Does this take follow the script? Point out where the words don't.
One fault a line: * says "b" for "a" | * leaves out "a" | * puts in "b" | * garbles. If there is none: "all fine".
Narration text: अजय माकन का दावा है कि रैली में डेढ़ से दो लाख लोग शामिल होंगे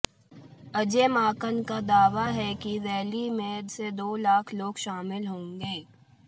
* leaves out "डेढ़"